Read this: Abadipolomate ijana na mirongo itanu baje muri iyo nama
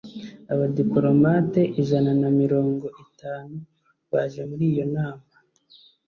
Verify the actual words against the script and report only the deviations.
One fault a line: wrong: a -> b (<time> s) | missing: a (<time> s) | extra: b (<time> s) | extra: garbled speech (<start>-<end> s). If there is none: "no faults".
no faults